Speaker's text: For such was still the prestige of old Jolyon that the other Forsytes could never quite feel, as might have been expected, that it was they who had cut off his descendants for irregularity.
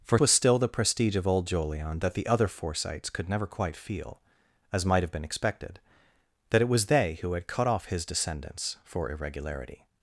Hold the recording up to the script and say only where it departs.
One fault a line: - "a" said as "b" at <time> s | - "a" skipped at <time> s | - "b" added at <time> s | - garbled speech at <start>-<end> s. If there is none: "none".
- "such" skipped at 0.2 s